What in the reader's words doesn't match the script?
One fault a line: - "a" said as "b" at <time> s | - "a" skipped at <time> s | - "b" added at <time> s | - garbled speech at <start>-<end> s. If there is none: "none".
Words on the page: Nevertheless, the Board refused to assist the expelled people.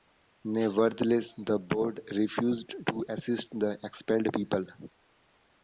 none